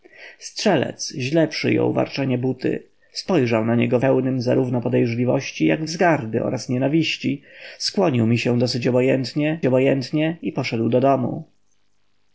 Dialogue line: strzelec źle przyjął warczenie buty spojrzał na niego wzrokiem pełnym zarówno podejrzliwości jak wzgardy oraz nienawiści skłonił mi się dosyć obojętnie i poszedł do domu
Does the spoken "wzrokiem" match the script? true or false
false